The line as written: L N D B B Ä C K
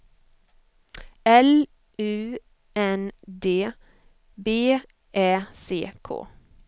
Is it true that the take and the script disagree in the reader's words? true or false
true